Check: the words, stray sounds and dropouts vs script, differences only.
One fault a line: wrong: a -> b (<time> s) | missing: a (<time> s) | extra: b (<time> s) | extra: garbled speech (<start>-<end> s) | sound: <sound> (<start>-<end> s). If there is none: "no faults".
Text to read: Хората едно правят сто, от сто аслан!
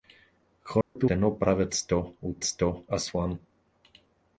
sound: dropout (0.8-1.0 s)